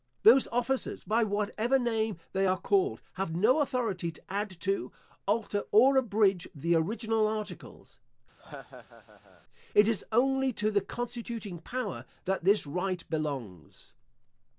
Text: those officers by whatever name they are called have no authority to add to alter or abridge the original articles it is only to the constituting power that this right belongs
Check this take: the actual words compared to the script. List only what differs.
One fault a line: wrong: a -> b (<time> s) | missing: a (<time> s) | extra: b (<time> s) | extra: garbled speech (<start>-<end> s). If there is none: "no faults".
no faults